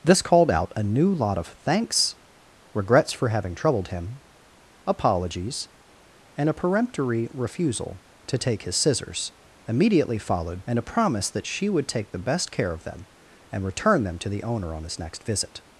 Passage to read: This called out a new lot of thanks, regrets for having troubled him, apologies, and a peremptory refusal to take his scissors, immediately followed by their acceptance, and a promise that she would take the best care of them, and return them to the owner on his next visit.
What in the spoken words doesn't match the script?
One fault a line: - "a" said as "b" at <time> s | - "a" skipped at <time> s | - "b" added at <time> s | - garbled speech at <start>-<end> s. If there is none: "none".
- "by their acceptance" skipped at 10.6 s